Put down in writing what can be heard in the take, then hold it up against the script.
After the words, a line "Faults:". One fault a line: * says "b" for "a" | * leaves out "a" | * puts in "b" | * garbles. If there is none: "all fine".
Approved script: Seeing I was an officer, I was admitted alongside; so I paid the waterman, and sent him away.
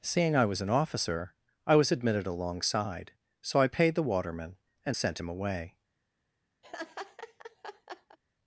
Seeing I was an officer, I was admitted alongside; so I paid the waterman, and sent him away.
Faults:
all fine